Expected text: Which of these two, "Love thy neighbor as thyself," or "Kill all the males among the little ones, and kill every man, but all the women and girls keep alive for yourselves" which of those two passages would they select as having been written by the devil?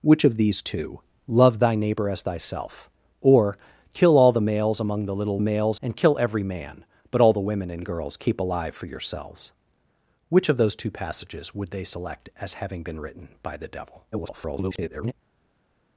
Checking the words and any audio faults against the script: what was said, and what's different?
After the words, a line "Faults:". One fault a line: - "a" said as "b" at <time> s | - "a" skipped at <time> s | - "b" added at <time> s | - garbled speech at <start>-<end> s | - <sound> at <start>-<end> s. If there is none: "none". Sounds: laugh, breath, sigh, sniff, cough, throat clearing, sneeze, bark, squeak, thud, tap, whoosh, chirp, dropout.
Which of these two, "Love thy neighbor as thyself," or "Kill all the males among the little males, and kill every man, but all the women and girls keep alive for yourselves" which of those two passages would they select as having been written by the devil? [garbled]
Faults:
- "ones" said as "males" at 5.4 s
- garbled speech at 14.1-15.1 s